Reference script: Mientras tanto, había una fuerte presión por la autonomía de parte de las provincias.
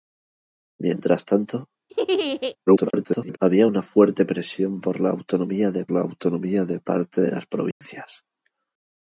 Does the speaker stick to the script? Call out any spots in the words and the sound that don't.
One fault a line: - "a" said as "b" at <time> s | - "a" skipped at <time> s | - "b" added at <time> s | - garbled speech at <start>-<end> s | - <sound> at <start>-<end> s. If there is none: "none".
- laugh at 1.9-2.6 s
- garbled speech at 2.7-3.4 s
- "la autonomía de" added at 5.9 s
- dropout at 7.7-7.8 s